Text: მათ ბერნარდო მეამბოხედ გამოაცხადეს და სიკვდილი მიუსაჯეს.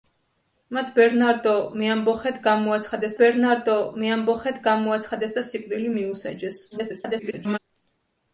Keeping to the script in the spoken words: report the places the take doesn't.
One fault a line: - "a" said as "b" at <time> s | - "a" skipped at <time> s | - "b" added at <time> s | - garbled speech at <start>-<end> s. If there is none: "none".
- "ბერნარდო მეამბოხედ გამოაცხადეს" added at 3.2 s
- garbled speech at 6.7-7.6 s